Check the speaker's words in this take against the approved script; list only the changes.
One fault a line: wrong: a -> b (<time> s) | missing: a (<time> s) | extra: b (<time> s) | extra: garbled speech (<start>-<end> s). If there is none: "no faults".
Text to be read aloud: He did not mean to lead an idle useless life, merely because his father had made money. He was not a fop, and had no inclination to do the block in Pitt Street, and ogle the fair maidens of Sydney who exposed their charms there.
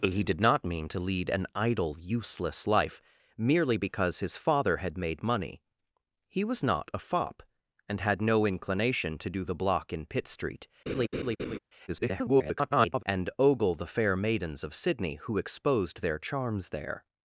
extra: garbled speech (11.9-13.0 s)